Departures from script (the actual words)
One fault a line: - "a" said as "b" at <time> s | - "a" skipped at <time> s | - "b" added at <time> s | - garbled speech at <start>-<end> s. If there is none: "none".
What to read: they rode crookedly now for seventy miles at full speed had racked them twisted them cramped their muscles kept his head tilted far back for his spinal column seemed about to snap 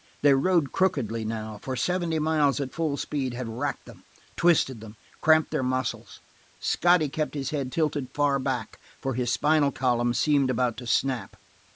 - "scotty" added at 6.6 s